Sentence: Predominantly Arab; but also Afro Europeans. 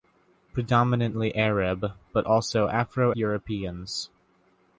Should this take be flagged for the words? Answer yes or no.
no